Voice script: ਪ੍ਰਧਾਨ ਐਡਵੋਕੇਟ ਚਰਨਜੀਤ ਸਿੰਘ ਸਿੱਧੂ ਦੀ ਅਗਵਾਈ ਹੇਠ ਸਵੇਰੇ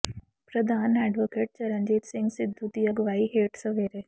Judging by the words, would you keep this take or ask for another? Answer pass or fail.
pass